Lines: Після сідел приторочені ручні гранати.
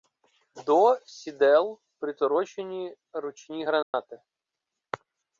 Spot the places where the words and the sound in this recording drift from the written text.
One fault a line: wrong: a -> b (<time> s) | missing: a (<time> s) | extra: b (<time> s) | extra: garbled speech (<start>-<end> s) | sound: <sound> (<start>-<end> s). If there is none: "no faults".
wrong: Після -> До (0.7 s)
sound: dropout (3.8-3.9 s)